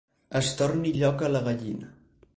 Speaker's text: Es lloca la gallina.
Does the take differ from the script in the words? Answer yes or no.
yes